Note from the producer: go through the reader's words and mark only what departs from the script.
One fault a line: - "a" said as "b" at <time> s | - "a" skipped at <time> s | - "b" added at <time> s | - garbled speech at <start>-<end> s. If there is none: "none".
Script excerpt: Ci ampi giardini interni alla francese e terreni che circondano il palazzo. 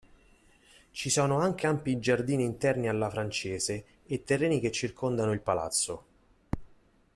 - "sono anche" added at 1.1 s